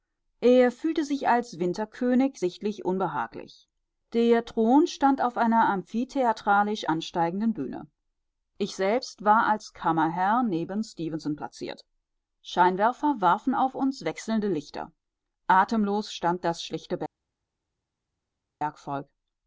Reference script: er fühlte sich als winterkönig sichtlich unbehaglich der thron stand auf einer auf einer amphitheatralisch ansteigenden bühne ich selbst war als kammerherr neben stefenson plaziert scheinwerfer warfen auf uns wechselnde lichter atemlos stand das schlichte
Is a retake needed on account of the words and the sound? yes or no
yes